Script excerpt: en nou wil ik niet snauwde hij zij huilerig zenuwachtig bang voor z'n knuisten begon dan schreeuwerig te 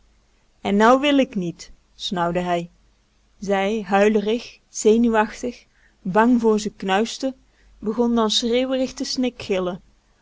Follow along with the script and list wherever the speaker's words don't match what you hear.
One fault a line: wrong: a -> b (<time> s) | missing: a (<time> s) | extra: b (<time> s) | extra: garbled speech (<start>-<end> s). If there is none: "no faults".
no faults